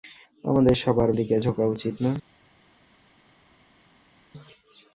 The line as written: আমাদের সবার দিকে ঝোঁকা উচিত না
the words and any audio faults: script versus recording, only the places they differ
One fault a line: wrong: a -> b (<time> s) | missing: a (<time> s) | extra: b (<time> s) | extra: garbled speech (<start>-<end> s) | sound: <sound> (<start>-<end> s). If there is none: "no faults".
no faults